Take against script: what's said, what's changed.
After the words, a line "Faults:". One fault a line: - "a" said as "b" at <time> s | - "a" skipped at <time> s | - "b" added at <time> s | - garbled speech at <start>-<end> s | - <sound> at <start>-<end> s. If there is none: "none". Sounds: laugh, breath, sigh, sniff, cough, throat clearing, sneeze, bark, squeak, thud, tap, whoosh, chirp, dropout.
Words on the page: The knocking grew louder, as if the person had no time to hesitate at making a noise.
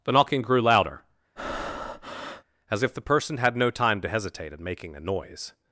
The knocking grew louder, as if the person had no time to hesitate in making a noise.
Faults:
- breath at 1.4-2.4 s
- "at" said as "in" at 4.5 s